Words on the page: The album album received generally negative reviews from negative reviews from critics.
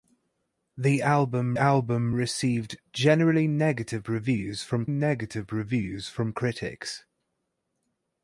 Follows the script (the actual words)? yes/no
yes